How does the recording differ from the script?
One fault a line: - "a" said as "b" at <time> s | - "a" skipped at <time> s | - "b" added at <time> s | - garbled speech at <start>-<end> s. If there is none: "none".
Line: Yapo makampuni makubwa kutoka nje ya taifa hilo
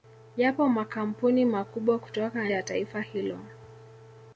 - "nje" skipped at 2.5 s